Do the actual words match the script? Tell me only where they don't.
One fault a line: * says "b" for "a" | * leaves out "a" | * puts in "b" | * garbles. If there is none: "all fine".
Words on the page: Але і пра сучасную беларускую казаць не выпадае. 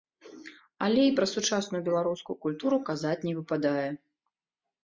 * puts in "культуру"